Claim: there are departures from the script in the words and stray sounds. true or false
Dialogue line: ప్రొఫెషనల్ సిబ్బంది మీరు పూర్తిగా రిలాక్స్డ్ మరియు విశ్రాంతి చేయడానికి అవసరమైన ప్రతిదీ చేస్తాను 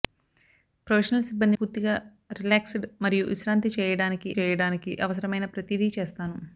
true